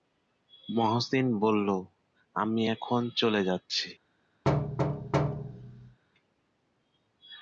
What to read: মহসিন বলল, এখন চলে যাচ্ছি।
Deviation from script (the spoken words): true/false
true